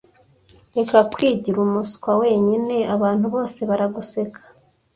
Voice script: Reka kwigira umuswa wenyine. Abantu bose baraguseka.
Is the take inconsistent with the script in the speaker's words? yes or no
no